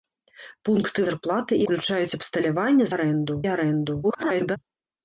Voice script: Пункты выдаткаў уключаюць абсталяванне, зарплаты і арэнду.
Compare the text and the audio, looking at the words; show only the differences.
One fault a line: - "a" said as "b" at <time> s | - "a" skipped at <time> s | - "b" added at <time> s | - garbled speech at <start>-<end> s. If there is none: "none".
- "выдаткаў" said as "зарплаты" at 1.1 s
- "зарплаты" said as "арэнду" at 2.9 s
- garbled speech at 4.0-4.6 s